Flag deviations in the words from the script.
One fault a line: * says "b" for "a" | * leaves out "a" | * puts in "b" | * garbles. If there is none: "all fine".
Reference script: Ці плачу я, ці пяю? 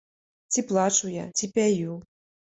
all fine